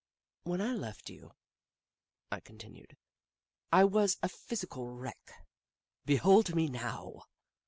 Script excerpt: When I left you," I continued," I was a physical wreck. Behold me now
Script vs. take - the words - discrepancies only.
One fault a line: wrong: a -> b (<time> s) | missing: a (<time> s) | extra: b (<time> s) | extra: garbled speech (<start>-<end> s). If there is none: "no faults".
no faults